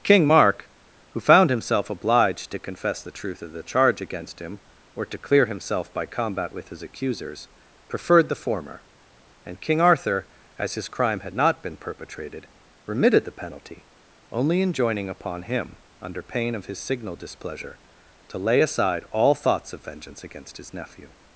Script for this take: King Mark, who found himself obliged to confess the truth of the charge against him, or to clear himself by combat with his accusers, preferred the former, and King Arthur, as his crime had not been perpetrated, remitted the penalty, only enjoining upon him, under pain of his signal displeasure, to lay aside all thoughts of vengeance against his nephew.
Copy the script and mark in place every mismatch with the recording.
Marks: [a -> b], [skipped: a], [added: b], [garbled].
King Mark, who found himself obliged to confess the truth of the charge against him, or to clear himself by combat with his accusers, preferred the former, and King Arthur, as his crime had not been perpetrated, remitted the penalty, only enjoining upon him, under pain of his signal displeasure, to lay aside all thoughts of vengeance against his nephew.